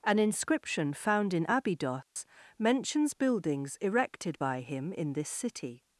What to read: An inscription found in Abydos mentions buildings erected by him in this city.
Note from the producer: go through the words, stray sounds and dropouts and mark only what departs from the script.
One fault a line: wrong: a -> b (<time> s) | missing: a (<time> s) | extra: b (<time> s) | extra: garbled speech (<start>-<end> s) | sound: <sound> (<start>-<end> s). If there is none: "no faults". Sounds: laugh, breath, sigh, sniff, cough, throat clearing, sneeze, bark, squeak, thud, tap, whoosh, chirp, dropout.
sound: dropout (2.0-2.2 s)